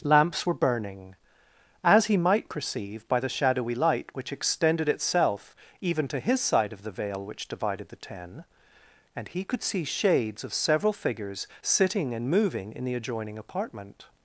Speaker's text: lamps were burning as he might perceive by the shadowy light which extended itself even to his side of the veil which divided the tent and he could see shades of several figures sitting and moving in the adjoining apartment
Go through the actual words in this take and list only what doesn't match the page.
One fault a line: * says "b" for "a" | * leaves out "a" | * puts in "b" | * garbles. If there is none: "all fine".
* says "ten" for "tent"